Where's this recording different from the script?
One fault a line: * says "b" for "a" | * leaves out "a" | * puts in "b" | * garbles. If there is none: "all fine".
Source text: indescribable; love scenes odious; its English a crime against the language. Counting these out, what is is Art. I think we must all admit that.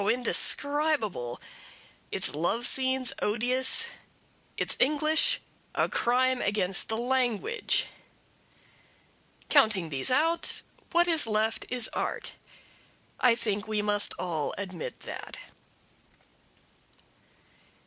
* puts in "its"
* puts in "left"